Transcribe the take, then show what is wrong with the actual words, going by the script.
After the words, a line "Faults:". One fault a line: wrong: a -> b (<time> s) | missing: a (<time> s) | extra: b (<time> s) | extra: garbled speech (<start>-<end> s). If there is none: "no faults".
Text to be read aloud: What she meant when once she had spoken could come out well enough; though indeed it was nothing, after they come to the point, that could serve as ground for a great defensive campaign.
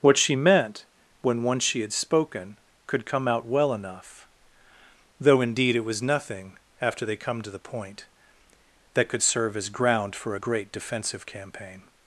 What she meant when once she had spoken could come out well enough; though indeed it was nothing, after they come to the point, that could serve as ground for a great defensive campaign.
Faults:
no faults